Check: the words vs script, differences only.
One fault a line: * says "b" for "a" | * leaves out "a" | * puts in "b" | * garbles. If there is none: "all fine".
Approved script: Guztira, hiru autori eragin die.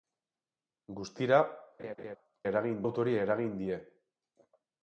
* says "eragin" for "hiru"